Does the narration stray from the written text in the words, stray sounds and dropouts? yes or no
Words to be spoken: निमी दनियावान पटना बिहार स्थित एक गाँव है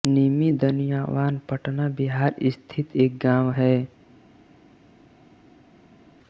no